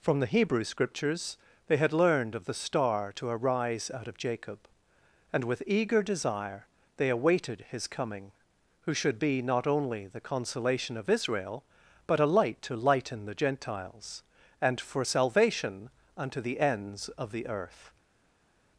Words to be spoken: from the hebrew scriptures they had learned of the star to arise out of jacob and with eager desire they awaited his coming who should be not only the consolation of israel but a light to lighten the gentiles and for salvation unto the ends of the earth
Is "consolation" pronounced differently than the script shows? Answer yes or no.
no